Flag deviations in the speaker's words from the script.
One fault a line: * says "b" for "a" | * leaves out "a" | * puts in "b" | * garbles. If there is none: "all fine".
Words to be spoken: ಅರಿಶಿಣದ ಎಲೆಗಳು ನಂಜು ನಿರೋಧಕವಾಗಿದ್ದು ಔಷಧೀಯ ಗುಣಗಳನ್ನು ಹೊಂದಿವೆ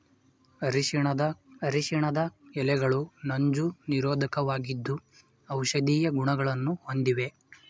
* puts in "ಅರಿಶಿಣದ"